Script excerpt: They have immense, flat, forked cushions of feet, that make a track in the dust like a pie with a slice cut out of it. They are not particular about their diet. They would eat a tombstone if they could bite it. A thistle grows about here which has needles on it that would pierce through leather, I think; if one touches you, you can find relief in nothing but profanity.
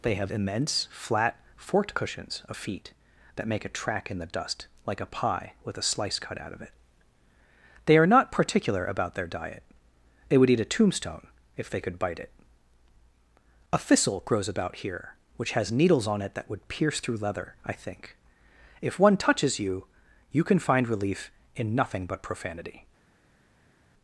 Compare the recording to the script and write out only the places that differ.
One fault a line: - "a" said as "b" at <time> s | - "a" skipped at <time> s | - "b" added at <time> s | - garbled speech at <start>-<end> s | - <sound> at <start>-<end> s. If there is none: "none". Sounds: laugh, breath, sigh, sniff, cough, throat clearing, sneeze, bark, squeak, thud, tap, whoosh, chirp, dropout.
none